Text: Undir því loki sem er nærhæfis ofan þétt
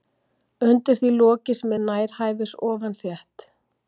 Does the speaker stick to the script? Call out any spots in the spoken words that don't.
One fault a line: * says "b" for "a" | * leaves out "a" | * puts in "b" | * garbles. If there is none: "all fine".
all fine